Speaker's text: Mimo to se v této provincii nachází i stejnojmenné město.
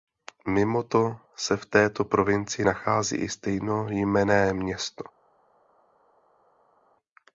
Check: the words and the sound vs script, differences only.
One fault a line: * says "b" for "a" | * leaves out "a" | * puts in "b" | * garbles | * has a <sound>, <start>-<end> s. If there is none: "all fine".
all fine